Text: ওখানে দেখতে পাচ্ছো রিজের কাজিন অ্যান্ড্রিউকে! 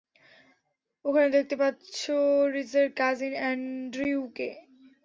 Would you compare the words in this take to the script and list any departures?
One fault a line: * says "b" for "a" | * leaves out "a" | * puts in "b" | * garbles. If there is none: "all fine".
all fine